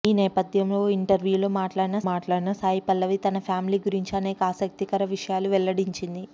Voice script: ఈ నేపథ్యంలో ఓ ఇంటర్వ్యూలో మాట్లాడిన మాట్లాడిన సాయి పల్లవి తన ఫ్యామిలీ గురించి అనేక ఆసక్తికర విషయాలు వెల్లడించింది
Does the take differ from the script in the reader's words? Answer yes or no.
no